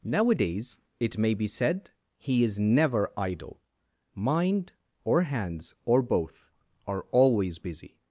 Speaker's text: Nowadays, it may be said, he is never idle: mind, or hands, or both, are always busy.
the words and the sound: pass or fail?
pass